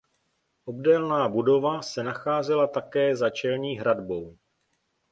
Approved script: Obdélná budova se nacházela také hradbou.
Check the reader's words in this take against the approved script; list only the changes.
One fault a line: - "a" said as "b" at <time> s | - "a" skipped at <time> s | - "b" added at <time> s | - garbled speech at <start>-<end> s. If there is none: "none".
- "za čelní" added at 3.1 s